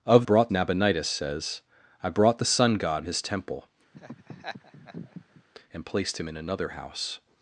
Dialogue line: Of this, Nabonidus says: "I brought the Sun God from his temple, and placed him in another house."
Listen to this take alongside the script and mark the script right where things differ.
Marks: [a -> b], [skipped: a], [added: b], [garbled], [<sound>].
Of [this, -> brought] Nabonidus says: "I brought the Sun God [skipped: from] his temple, [laugh] and placed him in another house."